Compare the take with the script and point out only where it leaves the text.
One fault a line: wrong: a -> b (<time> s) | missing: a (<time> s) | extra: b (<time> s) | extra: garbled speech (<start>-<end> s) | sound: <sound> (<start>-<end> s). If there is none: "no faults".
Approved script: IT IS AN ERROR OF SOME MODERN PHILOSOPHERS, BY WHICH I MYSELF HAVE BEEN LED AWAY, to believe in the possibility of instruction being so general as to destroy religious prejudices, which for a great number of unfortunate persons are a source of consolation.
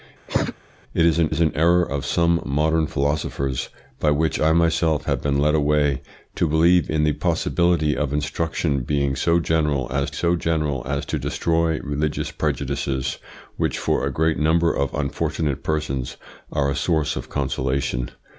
sound: cough (0.3-0.5 s)
extra: IS AN (1.3 s)
extra: so general as (10.1 s)